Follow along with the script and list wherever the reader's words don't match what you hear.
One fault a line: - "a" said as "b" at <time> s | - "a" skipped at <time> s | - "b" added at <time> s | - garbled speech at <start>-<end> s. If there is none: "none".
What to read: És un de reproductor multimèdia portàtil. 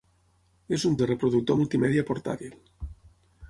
none